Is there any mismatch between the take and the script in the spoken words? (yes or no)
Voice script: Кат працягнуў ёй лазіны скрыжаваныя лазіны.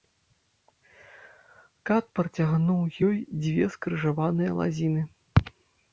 yes